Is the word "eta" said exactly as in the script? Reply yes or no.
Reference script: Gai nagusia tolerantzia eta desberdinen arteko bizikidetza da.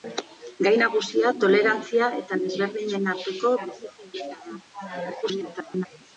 yes